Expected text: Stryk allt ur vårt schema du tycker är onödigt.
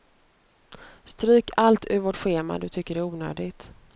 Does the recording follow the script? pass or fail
pass